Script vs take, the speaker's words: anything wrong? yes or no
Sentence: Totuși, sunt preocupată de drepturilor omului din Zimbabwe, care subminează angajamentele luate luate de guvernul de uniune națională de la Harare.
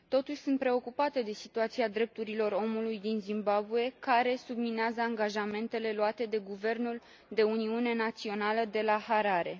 yes